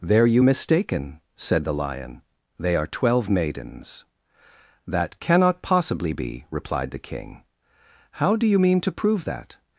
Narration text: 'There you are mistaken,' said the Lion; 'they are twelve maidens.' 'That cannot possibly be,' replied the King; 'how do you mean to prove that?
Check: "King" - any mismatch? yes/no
no